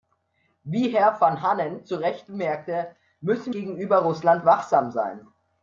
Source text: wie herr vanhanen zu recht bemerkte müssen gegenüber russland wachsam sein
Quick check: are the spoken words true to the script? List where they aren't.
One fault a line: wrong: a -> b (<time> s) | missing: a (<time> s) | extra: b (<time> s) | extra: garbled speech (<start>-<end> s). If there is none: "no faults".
no faults